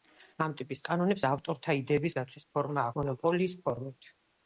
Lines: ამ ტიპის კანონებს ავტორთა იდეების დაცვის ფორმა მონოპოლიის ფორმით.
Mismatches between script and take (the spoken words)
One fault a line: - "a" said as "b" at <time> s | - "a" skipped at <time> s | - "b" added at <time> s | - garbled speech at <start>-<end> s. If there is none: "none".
none